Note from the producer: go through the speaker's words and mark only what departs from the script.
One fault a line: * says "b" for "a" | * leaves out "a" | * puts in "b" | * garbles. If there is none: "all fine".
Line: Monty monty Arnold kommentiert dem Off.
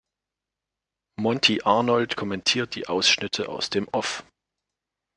* leaves out "monty"
* puts in "die Ausschnitte aus"